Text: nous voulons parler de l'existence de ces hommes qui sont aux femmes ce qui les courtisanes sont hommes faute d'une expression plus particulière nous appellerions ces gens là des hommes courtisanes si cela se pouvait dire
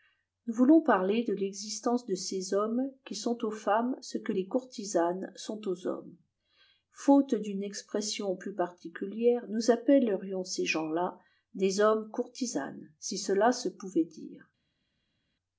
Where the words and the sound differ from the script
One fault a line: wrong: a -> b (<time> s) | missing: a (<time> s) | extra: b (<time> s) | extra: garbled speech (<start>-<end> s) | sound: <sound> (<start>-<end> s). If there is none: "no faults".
wrong: qui -> que (4.2 s)
extra: aux (5.7 s)